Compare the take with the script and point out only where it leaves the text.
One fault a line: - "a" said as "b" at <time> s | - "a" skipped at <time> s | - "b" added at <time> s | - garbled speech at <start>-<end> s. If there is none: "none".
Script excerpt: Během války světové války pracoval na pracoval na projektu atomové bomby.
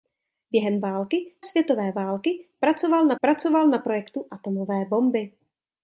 none